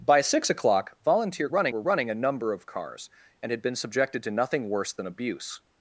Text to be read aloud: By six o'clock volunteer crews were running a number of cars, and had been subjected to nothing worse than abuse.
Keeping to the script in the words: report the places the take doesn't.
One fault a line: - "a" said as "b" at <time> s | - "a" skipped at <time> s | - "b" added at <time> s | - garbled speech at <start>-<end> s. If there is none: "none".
- "crews" said as "running" at 1.5 s